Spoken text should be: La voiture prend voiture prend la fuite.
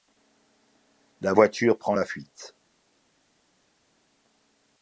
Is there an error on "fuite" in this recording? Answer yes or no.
no